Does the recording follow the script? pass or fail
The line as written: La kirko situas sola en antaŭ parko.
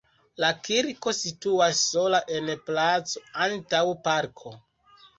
fail